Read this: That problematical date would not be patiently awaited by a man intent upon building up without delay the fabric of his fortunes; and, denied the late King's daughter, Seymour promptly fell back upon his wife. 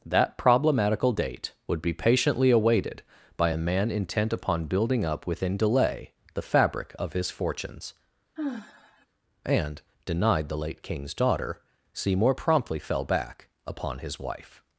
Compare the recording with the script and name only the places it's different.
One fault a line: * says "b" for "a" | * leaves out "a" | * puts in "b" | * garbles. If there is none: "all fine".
* leaves out "not"
* says "within" for "without"